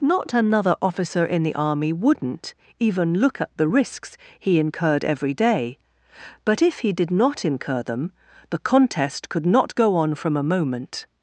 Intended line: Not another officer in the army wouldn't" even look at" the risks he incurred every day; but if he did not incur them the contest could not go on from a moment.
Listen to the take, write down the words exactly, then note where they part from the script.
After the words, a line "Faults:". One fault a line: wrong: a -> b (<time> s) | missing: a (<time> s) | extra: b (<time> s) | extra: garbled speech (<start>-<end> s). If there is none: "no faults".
Not another officer in the army wouldn't" even look at" the risks he incurred every day; but if he did not incur them the contest could not go on from a moment.
Faults:
no faults